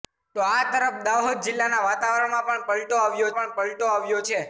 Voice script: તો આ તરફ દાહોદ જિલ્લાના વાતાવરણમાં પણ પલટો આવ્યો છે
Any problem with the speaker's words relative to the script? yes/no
yes